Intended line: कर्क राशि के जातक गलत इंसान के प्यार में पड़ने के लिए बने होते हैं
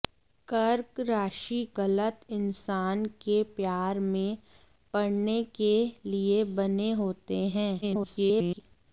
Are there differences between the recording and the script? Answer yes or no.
yes